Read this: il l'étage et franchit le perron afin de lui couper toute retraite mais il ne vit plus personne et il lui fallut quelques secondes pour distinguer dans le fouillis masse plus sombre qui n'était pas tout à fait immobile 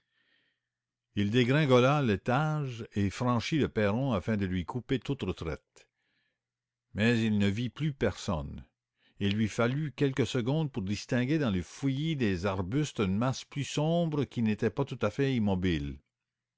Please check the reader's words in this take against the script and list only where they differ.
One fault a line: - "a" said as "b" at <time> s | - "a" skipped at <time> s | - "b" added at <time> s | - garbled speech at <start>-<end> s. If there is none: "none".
- "dégringola" added at 1.3 s
- "des arbustes une" added at 12.2 s